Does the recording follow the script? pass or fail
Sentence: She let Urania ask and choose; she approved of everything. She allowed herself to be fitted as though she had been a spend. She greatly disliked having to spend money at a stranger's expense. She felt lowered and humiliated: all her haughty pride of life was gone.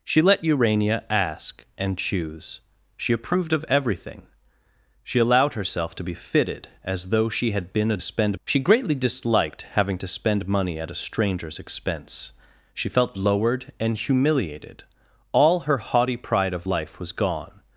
pass